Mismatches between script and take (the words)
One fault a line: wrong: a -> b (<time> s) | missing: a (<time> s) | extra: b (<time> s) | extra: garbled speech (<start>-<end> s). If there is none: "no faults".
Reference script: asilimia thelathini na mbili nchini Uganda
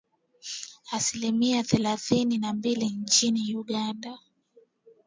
no faults